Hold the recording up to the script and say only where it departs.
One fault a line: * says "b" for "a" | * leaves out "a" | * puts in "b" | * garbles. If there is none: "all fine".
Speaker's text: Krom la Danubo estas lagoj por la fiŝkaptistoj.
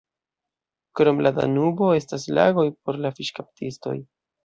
all fine